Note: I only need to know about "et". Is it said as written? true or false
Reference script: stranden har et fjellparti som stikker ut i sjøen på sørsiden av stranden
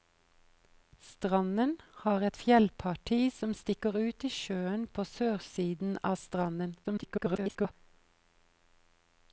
true